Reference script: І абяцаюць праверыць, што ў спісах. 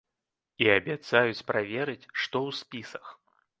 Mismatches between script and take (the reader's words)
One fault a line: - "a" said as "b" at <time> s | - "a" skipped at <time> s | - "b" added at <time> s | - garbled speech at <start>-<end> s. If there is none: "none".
none